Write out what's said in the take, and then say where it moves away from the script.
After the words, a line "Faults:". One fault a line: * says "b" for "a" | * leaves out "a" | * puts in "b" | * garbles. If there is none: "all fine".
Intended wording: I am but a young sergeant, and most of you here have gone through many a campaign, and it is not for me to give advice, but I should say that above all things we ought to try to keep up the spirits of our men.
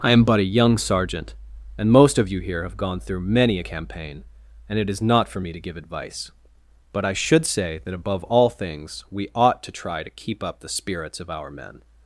I am but a young sergeant, and most of you here have gone through many a campaign, and it is not for me to give advice, but I should say that above all things we ought to try to keep up the spirits of our men.
Faults:
all fine